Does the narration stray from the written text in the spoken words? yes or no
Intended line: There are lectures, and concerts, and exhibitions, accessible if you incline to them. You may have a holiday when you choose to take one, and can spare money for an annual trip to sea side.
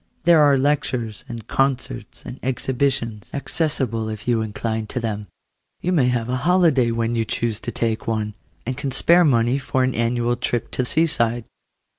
no